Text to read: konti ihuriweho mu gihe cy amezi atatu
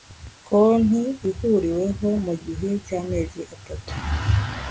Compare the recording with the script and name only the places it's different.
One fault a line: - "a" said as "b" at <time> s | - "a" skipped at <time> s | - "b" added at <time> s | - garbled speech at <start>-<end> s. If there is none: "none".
none